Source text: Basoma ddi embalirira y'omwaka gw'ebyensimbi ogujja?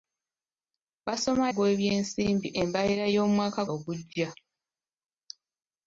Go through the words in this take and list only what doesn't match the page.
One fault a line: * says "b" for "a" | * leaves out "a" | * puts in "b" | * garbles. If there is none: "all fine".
* says "gw'ebyensimbi" for "ddi"
* leaves out "gw'ebyensimbi"